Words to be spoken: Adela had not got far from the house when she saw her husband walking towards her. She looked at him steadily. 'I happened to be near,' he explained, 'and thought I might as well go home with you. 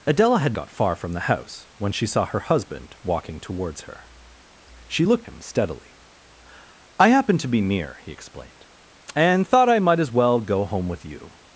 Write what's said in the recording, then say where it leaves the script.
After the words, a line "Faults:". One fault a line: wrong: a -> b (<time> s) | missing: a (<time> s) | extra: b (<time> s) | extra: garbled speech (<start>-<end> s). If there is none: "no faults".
Adela had got far from the house when she saw her husband walking towards her. She looked him steadily. 'I happened to be near,' he explained, 'and thought I might as well go home with you.
Faults:
missing: not (0.6 s)
missing: at (5.3 s)